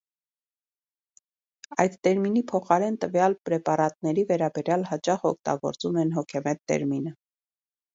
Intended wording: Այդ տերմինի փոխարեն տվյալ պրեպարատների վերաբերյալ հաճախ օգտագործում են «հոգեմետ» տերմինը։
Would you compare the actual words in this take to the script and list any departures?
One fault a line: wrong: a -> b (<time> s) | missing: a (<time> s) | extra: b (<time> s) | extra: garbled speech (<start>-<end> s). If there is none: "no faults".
no faults